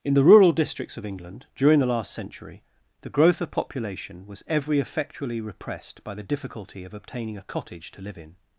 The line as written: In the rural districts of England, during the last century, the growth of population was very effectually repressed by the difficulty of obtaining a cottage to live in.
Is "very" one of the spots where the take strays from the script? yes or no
yes